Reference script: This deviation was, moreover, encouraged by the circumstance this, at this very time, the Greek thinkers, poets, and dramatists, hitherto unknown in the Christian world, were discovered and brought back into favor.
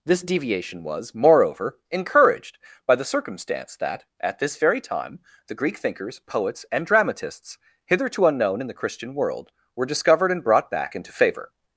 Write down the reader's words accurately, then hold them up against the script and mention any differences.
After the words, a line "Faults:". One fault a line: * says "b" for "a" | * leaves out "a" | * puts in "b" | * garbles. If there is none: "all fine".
This deviation was, moreover, encouraged by the circumstance that, at this very time, the Greek thinkers, poets, and dramatists, hitherto unknown in the Christian world, were discovered and brought back into favor.
Faults:
* says "that" for "this"